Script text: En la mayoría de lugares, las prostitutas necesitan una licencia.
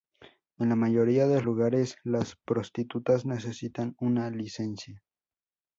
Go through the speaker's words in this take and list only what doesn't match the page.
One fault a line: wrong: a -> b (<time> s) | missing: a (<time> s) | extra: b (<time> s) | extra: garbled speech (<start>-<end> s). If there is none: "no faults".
no faults